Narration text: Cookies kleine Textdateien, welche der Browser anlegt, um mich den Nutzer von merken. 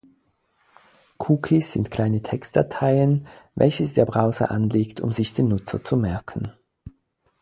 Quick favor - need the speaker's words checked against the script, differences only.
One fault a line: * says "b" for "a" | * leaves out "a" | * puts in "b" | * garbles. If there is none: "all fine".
* puts in "sind"
* says "sich" for "mich"
* says "zu" for "von"